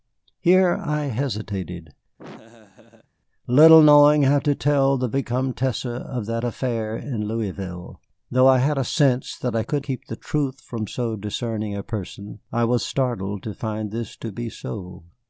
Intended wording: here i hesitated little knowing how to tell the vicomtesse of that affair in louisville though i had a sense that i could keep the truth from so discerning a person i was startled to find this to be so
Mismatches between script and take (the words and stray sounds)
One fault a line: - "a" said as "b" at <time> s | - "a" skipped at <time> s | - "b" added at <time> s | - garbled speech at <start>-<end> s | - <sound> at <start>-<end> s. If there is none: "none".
- laugh at 2.2-3.1 s